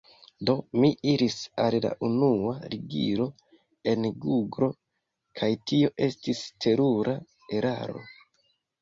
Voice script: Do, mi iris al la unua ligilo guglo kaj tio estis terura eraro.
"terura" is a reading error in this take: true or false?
false